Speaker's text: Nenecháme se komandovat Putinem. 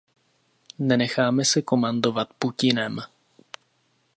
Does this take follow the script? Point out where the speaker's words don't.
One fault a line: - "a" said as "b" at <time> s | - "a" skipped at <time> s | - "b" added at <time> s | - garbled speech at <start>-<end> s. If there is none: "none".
none